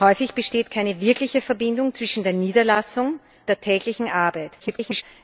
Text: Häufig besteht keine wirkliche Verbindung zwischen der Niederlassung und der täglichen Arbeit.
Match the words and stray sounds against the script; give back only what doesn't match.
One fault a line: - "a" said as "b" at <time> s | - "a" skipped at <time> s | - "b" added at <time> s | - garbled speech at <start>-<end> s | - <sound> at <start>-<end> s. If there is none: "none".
- "und" skipped at 3.2 s
- garbled speech at 4.6-5.0 s